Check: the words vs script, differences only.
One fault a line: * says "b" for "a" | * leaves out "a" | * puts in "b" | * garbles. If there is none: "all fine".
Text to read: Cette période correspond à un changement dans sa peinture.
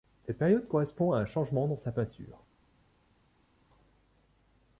all fine